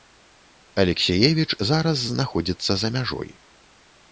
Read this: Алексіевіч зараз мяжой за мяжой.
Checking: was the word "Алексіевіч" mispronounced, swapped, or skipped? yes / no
no